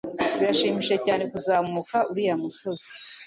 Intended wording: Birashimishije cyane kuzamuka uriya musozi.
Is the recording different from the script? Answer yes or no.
no